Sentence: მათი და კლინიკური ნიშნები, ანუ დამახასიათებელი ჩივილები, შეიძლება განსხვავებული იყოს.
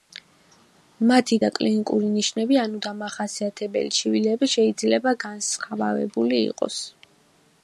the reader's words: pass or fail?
pass